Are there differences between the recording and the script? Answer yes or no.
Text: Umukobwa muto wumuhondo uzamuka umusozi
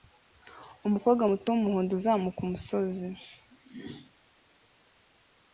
no